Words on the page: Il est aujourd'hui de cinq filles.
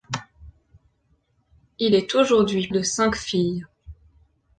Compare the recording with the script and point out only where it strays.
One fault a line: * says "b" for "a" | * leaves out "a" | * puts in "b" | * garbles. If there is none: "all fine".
all fine